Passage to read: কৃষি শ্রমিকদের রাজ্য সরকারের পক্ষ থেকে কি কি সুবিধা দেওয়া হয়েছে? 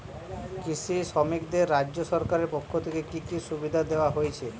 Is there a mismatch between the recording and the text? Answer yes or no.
no